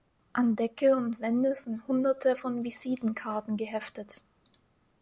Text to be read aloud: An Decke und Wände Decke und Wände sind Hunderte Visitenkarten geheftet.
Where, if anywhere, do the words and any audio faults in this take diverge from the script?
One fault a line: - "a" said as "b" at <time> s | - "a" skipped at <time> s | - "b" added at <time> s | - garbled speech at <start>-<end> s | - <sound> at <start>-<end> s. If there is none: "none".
- "Decke und Wände" skipped at 1.6 s
- "von" added at 2.4 s